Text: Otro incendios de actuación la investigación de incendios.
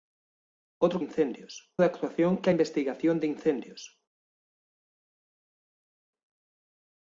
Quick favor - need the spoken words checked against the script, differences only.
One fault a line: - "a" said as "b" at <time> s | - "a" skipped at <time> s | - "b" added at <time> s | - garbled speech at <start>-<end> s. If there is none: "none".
none